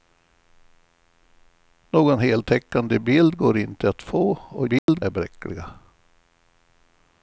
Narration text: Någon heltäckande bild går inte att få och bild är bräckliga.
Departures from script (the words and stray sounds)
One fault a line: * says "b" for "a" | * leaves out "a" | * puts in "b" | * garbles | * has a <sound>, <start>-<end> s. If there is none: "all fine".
* has a dropout, 4.8-4.9 s